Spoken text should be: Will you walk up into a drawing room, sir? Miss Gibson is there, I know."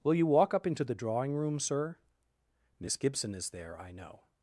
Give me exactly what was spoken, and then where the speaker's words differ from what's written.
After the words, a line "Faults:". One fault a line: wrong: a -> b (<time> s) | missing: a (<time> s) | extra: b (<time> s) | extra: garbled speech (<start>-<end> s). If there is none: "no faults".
Will you walk up into the drawing room, sir? Miss Gibson is there, I know."
Faults:
wrong: a -> the (0.8 s)